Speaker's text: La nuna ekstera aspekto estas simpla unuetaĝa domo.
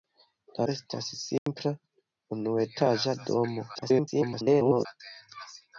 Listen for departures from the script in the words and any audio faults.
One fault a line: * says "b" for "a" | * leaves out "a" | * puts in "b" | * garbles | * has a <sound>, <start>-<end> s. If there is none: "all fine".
* leaves out "nuna ekstera aspekto"
* has a dropout, 1.4-1.5 s
* garbles